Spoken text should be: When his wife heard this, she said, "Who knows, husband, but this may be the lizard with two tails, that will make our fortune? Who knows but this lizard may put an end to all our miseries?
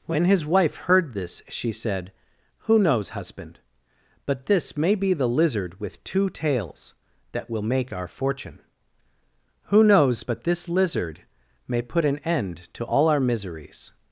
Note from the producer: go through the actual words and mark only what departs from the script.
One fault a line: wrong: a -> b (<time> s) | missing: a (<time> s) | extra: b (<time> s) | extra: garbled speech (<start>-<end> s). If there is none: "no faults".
no faults